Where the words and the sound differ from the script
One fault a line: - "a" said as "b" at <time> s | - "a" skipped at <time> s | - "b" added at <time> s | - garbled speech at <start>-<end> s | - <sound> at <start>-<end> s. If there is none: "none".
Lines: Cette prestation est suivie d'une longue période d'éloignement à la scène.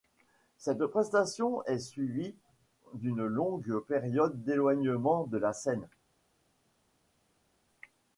- "à" said as "de" at 5.2 s